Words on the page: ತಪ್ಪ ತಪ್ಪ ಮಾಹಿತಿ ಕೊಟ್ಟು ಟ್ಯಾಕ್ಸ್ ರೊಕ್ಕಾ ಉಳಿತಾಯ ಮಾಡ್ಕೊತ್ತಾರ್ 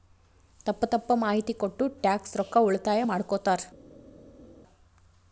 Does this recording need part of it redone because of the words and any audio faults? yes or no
no